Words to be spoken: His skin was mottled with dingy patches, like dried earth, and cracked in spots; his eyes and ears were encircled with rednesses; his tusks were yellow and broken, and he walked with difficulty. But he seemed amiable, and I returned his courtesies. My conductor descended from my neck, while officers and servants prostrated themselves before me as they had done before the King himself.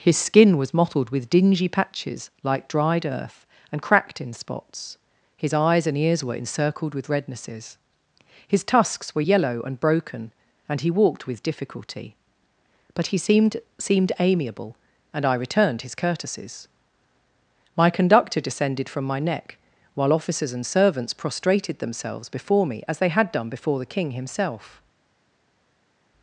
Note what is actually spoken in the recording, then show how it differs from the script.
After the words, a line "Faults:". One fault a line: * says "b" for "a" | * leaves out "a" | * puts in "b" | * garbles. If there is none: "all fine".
His skin was mottled with dingy patches, like dried earth, and cracked in spots; his eyes and ears were encircled with rednesses; his tusks were yellow and broken, and he walked with difficulty. But he seemed seemed amiable, and I returned his courtesies. My conductor descended from my neck, while officers and servants prostrated themselves before me as they had done before the King himself.
Faults:
* puts in "seemed"